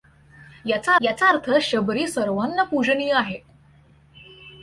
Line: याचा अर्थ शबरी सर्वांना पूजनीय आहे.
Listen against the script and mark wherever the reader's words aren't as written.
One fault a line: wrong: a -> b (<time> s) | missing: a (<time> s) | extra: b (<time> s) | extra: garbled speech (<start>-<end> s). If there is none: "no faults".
extra: याचा (1.0 s)